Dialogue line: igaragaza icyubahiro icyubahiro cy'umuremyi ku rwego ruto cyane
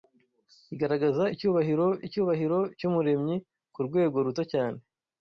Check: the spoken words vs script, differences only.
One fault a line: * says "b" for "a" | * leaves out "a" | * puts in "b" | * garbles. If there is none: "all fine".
all fine